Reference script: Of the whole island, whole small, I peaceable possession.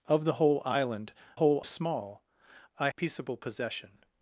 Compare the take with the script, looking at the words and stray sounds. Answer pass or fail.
pass